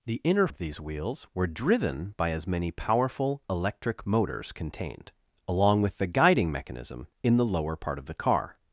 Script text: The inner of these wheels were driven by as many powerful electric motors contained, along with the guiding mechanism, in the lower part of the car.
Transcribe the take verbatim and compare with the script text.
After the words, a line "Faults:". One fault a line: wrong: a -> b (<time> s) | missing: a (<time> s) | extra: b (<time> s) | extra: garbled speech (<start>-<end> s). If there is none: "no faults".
The inner of these wheels were driven by as many powerful electric motors contained, along with the guiding mechanism, in the lower part of the car.
Faults:
no faults